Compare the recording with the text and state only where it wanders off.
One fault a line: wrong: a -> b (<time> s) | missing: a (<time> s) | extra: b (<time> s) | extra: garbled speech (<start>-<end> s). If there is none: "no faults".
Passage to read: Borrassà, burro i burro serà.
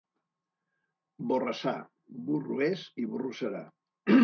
extra: és (2.7 s)